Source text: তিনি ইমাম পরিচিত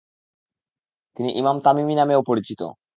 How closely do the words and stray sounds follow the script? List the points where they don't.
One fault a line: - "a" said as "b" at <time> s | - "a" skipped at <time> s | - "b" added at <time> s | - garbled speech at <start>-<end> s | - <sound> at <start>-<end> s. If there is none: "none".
- "তামিমি নামেও" added at 1.6 s